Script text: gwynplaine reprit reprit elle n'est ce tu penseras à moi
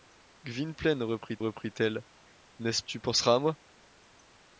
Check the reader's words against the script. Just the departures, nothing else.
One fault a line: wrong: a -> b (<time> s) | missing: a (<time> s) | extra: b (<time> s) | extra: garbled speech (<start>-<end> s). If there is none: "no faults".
no faults